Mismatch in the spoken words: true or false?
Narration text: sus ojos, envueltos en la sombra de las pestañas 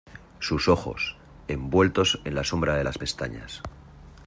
false